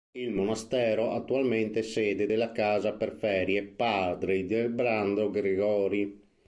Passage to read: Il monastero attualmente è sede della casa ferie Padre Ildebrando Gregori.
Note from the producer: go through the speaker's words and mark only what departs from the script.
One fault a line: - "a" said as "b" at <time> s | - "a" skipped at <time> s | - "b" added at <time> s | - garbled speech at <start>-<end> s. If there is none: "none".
- "per" added at 2.9 s